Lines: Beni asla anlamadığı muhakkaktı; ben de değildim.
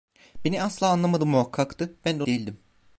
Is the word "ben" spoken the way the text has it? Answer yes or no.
yes